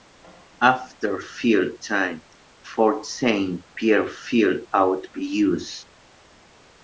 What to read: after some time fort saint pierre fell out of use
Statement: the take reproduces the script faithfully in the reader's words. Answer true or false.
false